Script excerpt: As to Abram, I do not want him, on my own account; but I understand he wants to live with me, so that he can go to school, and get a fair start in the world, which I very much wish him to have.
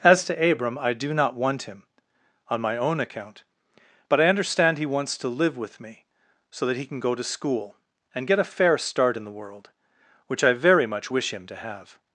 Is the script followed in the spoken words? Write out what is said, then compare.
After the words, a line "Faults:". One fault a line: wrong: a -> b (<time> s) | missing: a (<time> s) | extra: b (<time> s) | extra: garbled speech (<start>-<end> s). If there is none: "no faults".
As to Abram, I do not want him, on my own account; but I understand he wants to live with me, so that he can go to school, and get a fair start in the world, which I very much wish him to have.
Faults:
no faults